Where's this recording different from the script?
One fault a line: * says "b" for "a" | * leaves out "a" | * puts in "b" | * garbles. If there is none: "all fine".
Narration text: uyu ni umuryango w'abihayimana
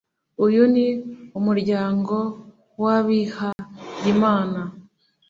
all fine